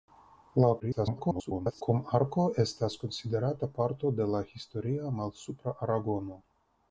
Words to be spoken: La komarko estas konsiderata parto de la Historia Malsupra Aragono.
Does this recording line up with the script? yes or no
no